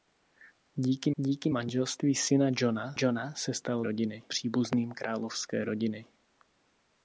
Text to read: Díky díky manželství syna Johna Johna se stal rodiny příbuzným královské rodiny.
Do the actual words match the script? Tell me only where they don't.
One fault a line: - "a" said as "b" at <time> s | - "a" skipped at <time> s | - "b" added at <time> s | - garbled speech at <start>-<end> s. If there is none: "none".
none